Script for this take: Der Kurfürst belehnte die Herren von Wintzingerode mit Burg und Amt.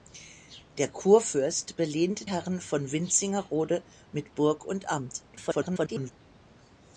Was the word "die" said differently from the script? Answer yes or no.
yes